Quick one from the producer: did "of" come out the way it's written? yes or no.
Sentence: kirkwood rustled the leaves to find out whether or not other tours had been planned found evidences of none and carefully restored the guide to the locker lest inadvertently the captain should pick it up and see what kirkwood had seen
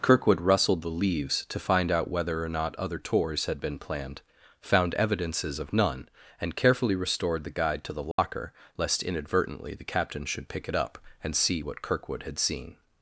yes